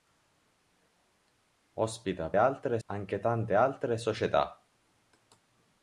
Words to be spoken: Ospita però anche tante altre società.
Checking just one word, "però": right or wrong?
wrong